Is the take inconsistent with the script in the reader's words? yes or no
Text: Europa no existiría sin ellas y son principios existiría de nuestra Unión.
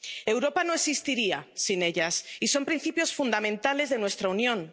yes